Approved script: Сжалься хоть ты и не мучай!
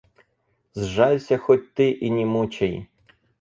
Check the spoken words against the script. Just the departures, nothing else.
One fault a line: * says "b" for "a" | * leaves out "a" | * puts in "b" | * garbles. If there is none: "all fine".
all fine